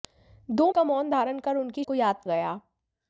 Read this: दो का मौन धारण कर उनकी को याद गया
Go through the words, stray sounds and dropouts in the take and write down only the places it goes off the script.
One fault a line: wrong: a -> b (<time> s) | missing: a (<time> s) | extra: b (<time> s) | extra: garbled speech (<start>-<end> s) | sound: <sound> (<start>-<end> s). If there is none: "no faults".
no faults